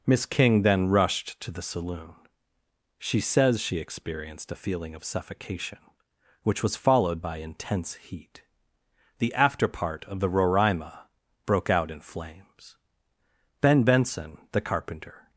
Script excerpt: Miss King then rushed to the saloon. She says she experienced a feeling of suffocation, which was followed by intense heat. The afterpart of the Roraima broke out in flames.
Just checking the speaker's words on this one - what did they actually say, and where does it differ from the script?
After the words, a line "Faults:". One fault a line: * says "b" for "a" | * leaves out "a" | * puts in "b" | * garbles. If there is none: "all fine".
Miss King then rushed to the saloon. She says she experienced a feeling of suffocation, which was followed by intense heat. The afterpart of the Roraima broke out in flames. Ben Benson, the carpenter
Faults:
* puts in "Ben Benson the carpenter"